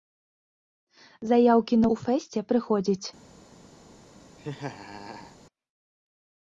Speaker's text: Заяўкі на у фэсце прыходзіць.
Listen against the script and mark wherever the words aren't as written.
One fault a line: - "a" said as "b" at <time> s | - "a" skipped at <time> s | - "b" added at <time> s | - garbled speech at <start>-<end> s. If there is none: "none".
none